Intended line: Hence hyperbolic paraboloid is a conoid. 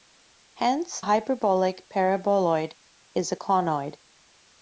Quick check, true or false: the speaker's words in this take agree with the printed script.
true